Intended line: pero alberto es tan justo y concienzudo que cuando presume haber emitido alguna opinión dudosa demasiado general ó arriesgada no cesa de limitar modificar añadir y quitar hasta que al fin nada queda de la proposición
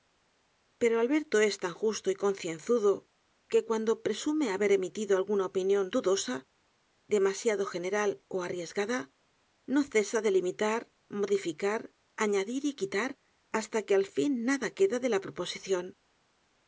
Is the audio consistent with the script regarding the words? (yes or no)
yes